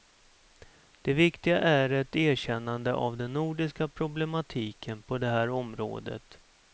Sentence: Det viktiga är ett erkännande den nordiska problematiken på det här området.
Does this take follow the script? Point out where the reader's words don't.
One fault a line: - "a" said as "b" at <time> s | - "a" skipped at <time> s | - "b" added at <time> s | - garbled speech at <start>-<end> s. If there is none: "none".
- "av" added at 2.9 s